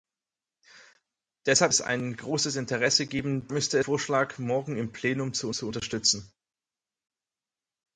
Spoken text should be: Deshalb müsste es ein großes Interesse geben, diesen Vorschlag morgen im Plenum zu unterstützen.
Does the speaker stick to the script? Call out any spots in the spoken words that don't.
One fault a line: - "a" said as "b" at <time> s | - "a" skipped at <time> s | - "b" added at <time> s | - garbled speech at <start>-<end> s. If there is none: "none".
- "müsste" skipped at 1.7 s
- "diesen" said as "müsste" at 3.5 s
- "zu" added at 5.5 s